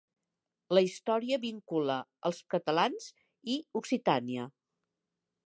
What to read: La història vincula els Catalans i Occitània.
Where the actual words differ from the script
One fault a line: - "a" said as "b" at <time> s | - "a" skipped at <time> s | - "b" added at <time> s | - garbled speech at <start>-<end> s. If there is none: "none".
none